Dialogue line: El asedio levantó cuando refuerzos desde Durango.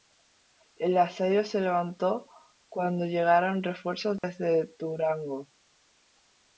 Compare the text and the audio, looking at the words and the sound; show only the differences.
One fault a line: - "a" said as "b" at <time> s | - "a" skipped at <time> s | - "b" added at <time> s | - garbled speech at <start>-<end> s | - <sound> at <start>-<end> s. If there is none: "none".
- "se" added at 1.4 s
- "llegaron" added at 3.0 s
- dropout at 4.2-4.2 s